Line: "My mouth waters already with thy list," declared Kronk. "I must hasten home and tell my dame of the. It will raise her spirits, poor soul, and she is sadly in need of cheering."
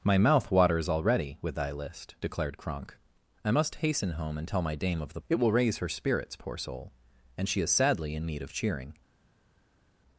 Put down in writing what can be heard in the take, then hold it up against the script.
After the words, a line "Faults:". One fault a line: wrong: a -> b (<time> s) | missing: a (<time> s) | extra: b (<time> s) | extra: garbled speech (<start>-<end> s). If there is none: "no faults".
"My mouth waters already with thy list," declared Kronk. "I must hasten home and tell my dame of the. It will raise her spirits, poor soul, and she is sadly in need of cheering."
Faults:
no faults